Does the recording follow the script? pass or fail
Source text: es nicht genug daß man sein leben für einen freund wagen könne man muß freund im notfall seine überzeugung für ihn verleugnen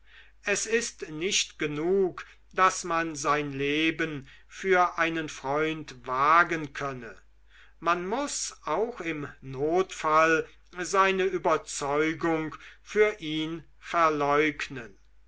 fail